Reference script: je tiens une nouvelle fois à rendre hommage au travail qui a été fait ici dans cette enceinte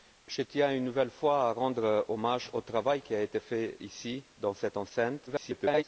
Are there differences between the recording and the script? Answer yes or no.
yes